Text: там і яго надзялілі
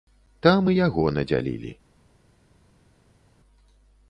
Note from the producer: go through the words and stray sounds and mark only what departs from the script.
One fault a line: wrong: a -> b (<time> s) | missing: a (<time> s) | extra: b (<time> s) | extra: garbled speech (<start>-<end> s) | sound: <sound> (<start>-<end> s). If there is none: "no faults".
no faults